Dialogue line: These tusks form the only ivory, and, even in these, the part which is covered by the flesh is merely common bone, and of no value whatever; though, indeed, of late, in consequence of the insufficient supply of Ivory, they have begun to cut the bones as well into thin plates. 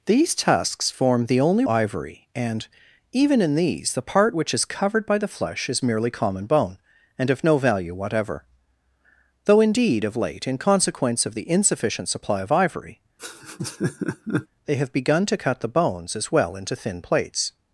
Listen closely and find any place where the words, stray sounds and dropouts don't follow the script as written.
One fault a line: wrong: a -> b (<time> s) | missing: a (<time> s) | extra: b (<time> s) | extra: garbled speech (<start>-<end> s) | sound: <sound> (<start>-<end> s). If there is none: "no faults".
sound: laugh (13.2-14.5 s)